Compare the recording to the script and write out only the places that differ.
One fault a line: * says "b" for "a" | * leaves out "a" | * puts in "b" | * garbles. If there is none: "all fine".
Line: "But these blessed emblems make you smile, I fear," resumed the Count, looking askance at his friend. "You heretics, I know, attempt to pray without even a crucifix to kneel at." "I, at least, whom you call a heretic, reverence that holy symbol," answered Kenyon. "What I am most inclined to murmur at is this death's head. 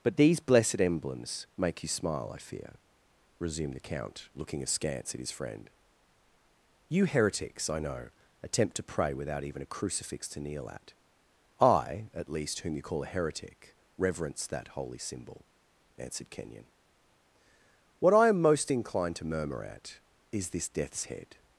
all fine